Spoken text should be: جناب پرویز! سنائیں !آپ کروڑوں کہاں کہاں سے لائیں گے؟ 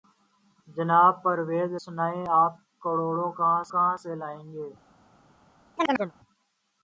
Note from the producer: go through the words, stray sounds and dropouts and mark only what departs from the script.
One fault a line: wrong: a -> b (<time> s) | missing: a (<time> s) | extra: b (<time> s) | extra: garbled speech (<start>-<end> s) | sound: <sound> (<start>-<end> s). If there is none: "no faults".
sound: chirp (5.8-6.1 s)